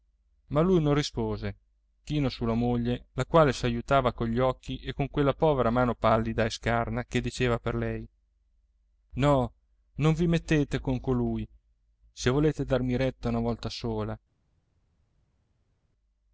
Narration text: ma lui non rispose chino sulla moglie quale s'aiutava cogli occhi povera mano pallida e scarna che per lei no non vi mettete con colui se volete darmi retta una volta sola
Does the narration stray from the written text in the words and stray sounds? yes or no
yes